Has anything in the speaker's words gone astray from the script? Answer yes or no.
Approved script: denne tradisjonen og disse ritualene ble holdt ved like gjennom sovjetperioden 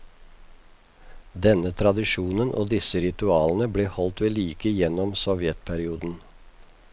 no